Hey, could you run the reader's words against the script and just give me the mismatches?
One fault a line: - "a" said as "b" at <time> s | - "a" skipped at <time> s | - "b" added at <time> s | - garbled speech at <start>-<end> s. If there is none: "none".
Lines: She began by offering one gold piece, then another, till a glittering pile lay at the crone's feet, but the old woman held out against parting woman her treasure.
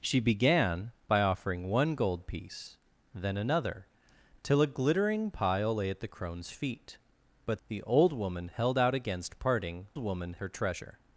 none